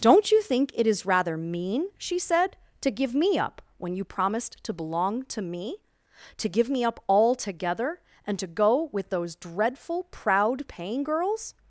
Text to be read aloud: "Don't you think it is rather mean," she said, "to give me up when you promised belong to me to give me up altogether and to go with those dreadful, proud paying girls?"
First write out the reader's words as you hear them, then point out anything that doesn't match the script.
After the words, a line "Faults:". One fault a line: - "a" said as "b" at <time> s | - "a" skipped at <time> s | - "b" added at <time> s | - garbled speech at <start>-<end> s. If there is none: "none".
"Don't you think it is rather mean," she said, "to give me up when you promised to belong to me to give me up altogether and to go with those dreadful, proud paying girls?"
Faults:
- "to" added at 4.6 s